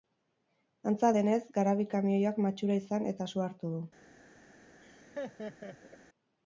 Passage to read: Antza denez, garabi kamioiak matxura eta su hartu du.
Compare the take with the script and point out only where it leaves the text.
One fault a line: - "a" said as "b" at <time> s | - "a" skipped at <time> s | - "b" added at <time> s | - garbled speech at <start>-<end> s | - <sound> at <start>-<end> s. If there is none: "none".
- "izan" added at 2.9 s
- laugh at 4.8-6.0 s